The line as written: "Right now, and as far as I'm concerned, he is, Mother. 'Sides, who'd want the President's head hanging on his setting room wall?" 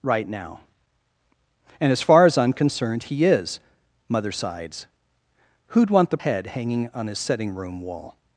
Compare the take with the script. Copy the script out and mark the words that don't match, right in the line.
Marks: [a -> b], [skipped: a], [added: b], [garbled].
"Right now, and as far as I'm concerned, he is, Mother. 'Sides, who'd want the [skipped: President's] head hanging on his setting room wall?"